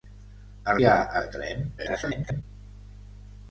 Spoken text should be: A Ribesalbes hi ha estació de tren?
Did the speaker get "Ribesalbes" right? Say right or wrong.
wrong